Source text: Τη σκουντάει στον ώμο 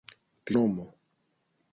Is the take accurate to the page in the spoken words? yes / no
no